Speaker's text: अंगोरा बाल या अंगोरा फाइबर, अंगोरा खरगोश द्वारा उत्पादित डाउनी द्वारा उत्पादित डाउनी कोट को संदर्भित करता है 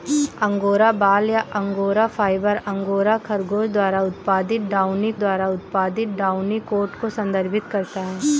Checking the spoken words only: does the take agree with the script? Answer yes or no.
yes